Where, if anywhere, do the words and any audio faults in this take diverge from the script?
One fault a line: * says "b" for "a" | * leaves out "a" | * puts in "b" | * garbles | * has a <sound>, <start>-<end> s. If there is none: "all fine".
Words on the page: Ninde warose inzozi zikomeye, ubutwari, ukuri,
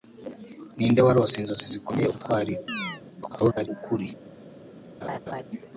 * has a chirp, 2.7-3.0 s
* garbles
* has a laugh, 5.0-5.4 s